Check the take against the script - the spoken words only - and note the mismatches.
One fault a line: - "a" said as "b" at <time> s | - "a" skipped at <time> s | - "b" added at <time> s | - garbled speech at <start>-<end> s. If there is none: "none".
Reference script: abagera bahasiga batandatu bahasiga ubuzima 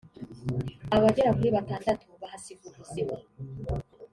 - "bahasiga" said as "kuri" at 1.4 s